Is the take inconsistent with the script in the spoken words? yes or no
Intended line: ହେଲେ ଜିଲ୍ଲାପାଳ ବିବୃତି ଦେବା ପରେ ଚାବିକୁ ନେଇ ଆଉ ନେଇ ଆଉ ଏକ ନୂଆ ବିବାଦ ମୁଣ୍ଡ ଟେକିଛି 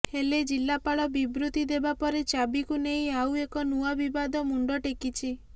yes